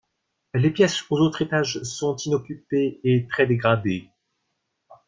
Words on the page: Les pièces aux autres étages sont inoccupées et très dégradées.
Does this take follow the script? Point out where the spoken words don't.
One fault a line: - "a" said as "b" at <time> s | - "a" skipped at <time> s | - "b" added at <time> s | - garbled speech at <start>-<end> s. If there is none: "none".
none